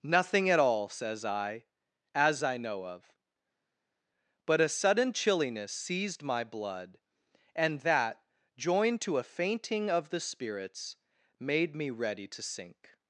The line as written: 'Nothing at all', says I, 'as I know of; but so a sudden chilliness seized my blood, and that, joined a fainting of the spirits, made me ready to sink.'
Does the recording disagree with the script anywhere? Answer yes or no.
yes